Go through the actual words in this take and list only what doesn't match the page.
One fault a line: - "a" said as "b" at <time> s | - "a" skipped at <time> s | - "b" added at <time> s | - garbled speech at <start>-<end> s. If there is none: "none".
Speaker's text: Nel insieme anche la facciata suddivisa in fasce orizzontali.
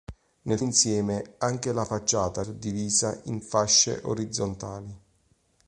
none